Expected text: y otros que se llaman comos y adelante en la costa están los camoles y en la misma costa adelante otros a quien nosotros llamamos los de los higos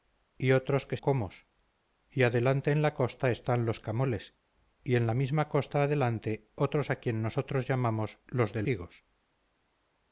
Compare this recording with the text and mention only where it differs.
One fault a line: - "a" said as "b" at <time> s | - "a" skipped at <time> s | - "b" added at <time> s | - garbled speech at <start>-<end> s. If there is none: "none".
- "se llaman" skipped at 1.0 s
- "los" skipped at 8.6 s